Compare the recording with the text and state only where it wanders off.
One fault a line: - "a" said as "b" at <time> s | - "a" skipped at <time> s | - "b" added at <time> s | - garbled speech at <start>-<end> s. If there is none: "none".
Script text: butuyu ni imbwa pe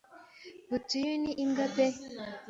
none